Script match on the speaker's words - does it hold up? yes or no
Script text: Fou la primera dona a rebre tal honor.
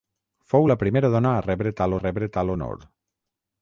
no